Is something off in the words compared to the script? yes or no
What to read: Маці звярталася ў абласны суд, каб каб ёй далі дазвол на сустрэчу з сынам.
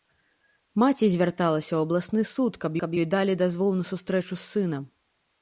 no